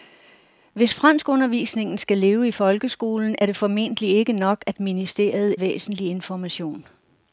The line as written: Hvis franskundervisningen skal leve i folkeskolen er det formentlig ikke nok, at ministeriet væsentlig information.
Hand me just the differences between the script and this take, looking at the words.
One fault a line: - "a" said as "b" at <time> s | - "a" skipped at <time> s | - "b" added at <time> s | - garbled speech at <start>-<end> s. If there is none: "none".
none